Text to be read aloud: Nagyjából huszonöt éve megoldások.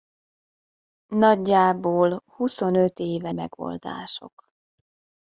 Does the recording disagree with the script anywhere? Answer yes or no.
no